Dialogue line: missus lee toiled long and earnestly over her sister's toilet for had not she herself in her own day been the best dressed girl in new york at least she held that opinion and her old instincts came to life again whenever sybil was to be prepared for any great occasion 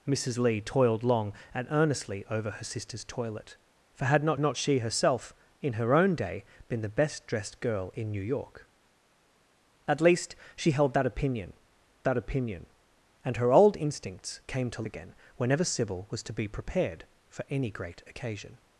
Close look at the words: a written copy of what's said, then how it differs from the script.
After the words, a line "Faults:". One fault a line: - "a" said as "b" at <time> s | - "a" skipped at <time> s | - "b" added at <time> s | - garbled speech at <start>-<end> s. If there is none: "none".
missus lee toiled long and earnestly over her sister's toilet for had not not she herself in her own day been the best dressed girl in new york at least she held that opinion that opinion and her old instincts came to again whenever sybil was to be prepared for any great occasion
Faults:
- "not" added at 4.4 s
- "that opinion" added at 12.0 s
- "life" skipped at 14.8 s